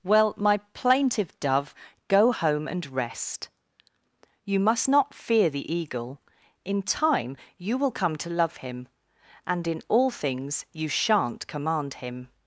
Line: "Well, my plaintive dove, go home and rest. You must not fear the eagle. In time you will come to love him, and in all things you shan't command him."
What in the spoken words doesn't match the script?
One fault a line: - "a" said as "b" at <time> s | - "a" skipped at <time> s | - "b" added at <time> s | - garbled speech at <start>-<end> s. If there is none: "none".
none